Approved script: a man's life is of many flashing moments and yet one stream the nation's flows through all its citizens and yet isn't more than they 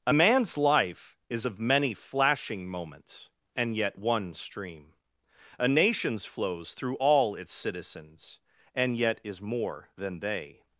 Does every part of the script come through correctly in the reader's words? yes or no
no